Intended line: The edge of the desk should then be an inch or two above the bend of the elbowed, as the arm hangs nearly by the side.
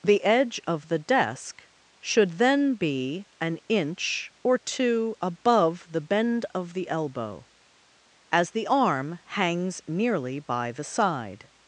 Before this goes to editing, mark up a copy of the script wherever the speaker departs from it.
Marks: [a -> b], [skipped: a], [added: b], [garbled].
The edge of the desk should then be an inch or two above the bend of the [elbowed, -> elbow] as the arm hangs nearly by the side.